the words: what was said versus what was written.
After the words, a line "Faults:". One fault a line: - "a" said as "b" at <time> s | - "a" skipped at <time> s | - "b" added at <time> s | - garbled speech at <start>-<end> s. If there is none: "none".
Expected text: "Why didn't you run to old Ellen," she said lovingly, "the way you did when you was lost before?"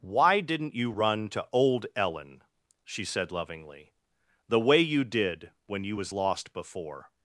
"Why didn't you run to old Ellen," she said lovingly, "the way you did when you was lost before?"
Faults:
none